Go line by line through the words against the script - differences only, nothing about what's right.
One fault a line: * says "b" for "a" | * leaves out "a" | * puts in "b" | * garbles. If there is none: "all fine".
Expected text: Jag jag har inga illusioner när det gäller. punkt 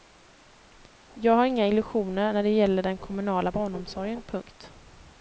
* leaves out "jag"
* puts in "den kommunala barnomsorgen"